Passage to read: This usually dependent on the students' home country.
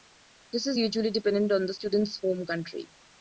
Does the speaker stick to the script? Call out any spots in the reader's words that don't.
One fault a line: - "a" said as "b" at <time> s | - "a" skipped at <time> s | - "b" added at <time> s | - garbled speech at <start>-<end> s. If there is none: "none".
- "is" added at 0.7 s